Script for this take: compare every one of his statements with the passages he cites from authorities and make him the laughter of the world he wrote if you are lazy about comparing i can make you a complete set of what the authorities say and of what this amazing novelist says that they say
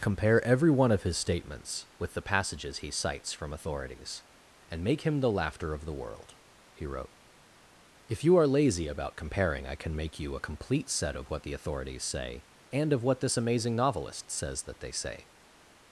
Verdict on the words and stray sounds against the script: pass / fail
pass